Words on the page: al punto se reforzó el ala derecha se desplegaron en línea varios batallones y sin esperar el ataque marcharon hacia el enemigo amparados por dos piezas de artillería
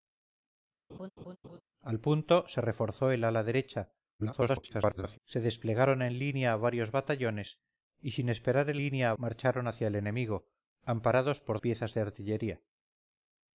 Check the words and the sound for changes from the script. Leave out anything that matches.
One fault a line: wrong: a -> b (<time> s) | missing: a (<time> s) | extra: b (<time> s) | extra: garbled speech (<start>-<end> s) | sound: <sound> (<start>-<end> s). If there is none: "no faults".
sound: laugh (0.9-1.6 s)
extra: garbled speech (4.2-5.2 s)
wrong: ataque -> línea (8.8 s)
missing: dos (11.6 s)